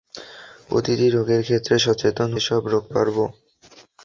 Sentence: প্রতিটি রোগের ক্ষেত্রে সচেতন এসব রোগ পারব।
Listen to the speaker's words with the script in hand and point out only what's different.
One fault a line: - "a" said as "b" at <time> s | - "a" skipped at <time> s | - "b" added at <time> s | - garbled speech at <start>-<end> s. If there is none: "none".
none